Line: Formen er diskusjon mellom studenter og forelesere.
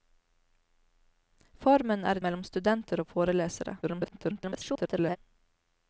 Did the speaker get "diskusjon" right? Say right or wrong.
wrong